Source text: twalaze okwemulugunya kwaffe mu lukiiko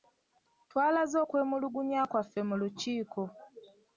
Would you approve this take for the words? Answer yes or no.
yes